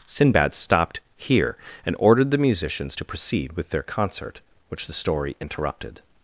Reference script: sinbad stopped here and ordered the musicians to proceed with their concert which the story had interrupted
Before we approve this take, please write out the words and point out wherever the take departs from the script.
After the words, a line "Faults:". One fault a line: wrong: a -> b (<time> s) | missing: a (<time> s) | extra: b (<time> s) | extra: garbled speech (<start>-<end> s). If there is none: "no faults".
sinbad stopped here and ordered the musicians to proceed with their concert which the story interrupted
Faults:
missing: had (5.4 s)